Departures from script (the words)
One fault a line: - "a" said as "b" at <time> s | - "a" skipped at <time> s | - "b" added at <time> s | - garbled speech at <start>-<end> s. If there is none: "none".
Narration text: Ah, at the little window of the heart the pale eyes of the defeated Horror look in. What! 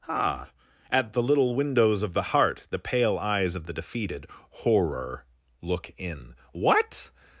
- "window" said as "windows" at 1.5 s